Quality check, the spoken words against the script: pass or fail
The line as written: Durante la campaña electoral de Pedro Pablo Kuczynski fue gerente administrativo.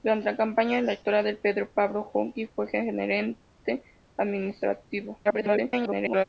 fail